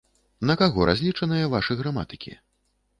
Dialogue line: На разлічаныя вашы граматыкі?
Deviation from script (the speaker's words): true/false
true